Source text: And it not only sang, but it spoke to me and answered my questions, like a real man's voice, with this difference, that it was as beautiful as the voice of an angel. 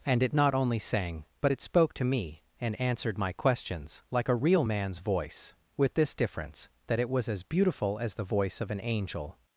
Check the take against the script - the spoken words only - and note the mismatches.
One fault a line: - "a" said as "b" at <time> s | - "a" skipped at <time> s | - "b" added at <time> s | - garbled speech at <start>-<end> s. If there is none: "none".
none